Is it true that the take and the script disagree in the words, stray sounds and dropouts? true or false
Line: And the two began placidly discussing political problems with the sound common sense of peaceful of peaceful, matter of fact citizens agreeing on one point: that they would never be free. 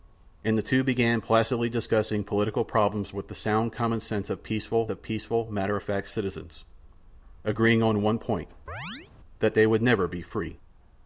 true